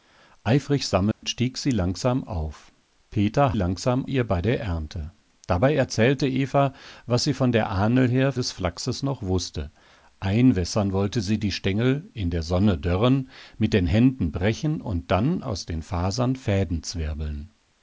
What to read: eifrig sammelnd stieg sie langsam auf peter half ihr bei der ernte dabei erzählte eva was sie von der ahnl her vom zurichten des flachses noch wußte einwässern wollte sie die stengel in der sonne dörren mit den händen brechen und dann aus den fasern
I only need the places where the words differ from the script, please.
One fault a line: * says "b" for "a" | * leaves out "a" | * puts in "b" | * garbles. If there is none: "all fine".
* says "langsam" for "half"
* leaves out "vom zurichten"